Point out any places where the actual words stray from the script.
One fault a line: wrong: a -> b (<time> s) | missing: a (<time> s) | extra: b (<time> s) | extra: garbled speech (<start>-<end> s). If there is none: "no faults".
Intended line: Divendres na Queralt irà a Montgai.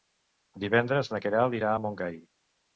no faults